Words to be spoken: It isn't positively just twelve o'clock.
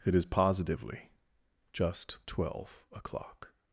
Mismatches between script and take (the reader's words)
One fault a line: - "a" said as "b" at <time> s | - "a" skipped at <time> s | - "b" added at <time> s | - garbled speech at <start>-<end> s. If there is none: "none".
- "isn't" said as "is" at 0.1 s